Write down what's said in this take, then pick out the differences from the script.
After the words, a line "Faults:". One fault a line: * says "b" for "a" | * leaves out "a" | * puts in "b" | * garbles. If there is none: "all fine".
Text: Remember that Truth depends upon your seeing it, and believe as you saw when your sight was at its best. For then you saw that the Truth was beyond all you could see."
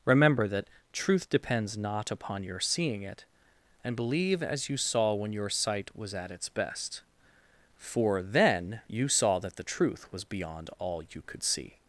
Remember that Truth depends not upon your seeing it, and believe as you saw when your sight was at its best. For then you saw that the Truth was beyond all you could see."
Faults:
* puts in "not"